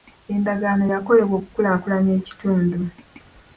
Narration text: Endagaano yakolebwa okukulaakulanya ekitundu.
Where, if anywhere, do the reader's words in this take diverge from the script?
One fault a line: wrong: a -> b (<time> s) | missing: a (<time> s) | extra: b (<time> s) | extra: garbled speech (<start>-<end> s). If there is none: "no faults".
no faults